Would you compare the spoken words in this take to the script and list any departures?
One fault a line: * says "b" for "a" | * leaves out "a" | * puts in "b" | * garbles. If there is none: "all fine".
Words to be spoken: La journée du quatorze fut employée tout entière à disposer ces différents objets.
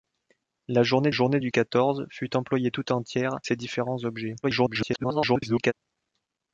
* puts in "journée"
* leaves out "à disposer"
* garbles